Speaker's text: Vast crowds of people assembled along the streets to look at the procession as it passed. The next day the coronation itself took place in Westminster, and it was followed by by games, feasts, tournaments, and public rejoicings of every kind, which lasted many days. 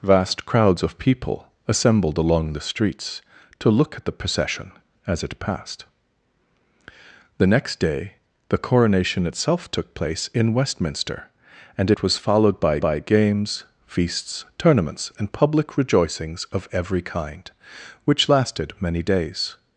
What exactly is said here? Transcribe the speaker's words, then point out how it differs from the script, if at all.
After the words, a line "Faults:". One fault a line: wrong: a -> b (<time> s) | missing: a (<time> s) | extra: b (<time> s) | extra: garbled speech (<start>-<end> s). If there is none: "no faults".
Vast crowds of people assembled along the streets to look at the procession as it passed. The next day the coronation itself took place in Westminster, and it was followed by by games, feasts, tournaments, and public rejoicings of every kind, which lasted many days.
Faults:
no faults